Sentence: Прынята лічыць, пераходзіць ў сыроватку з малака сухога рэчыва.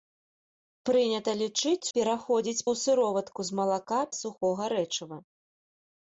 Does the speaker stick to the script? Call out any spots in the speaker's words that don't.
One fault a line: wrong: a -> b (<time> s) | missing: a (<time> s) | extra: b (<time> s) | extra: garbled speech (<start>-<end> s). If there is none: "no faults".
no faults